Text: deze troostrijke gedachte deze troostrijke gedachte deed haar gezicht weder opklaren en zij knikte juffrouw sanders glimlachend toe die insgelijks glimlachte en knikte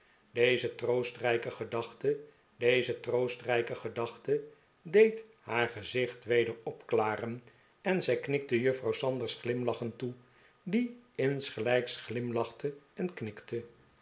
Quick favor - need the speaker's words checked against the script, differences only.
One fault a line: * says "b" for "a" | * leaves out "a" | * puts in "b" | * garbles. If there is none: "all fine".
all fine